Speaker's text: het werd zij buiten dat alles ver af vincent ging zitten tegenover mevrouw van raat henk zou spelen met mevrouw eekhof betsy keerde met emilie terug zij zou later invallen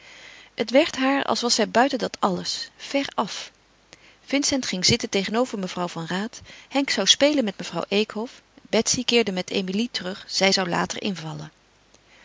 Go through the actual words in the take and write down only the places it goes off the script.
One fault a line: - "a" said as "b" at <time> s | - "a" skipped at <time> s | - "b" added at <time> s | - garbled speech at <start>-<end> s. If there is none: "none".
- "haar als was" added at 0.9 s